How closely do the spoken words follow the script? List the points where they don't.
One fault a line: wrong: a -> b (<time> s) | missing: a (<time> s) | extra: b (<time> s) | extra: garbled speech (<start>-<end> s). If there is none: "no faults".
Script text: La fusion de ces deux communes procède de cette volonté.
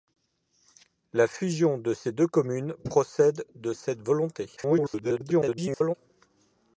extra: garbled speech (4.6-5.9 s)